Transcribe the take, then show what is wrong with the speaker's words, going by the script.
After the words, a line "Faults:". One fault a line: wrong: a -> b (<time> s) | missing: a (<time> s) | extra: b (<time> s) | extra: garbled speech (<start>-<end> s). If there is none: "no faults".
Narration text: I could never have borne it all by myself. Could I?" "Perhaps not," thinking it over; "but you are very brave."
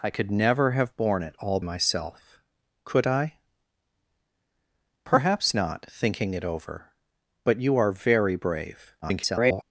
I could never have borne it all myself. Could I?" "Perhaps not," thinking it over; "but you are very brave." [garbled]
Faults:
missing: by (1.6 s)
extra: garbled speech (9.0-9.6 s)